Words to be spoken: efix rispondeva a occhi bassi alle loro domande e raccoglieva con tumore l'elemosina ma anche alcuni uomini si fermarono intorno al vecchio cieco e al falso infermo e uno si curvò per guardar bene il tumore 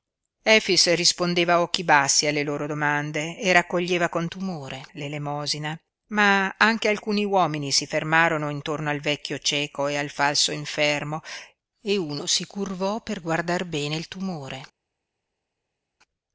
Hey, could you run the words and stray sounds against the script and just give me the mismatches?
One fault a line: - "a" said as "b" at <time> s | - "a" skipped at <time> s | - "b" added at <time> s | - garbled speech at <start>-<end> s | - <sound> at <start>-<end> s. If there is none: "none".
none